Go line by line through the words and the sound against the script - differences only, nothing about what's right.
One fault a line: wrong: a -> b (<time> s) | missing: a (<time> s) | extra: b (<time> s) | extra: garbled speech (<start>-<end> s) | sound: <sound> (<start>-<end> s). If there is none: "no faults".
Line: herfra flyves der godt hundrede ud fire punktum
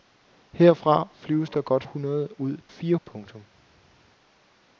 no faults